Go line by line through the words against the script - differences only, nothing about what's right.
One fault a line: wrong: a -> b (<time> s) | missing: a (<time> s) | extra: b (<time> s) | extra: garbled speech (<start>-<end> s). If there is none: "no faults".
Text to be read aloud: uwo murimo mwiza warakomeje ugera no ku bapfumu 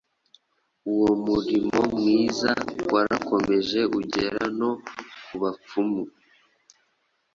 no faults